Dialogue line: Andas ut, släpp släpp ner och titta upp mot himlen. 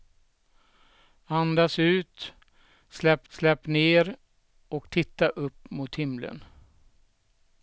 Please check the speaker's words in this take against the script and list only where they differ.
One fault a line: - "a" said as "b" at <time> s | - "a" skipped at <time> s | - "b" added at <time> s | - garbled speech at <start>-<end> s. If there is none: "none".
none